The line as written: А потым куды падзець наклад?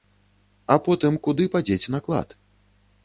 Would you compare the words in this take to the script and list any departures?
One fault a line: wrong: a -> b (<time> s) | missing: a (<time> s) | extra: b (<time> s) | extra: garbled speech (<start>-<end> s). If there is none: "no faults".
no faults